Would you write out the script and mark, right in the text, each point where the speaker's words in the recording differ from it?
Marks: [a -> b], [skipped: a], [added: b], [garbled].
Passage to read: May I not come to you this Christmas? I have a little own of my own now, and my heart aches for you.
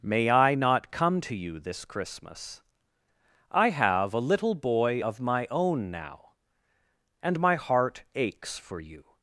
May I not come to you this Christmas? I have a little [own -> boy] of my own now, and my heart aches for you.